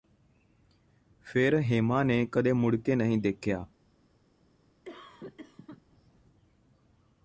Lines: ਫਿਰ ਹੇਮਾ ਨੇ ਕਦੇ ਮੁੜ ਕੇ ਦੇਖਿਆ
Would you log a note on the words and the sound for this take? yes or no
yes